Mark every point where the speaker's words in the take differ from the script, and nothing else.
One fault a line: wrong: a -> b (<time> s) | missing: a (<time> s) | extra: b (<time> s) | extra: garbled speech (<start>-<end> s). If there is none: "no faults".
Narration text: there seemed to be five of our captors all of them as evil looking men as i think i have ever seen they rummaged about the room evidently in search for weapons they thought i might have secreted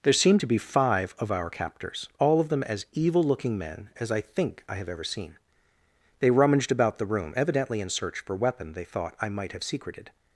wrong: weapons -> weapon (8.3 s)